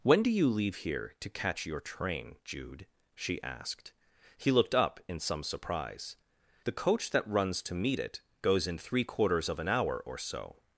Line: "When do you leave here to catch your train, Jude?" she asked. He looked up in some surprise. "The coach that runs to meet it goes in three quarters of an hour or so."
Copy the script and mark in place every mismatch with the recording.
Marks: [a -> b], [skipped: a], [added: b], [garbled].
"When do you leave here to catch your train, Jude?" she asked. He looked up in some surprise. "The coach that runs to meet it goes in three quarters of an hour or so."